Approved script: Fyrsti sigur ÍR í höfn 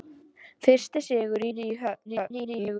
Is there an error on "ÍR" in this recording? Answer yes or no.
yes